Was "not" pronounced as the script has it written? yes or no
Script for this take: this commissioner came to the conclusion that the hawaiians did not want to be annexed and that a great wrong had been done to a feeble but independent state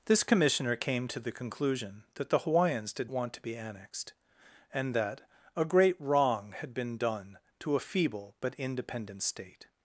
no